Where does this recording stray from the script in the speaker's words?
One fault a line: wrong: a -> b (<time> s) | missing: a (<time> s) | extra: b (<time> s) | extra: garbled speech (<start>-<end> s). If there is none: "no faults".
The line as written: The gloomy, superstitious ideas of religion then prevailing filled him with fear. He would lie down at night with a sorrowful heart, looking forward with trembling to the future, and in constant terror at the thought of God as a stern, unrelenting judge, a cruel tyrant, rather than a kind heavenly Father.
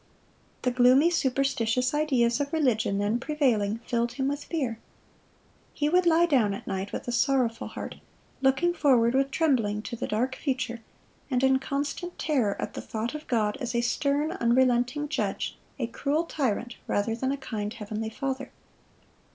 extra: dark (10.1 s)